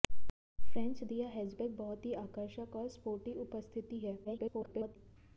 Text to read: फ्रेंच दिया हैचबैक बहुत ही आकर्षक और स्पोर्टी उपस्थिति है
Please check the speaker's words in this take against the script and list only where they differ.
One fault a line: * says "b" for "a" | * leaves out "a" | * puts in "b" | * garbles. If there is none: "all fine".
* garbles